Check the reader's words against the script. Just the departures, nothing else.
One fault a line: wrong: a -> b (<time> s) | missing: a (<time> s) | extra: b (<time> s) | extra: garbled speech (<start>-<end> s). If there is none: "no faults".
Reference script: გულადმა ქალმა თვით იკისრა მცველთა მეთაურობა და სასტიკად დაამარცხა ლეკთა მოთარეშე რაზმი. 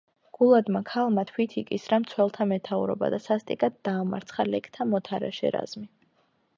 no faults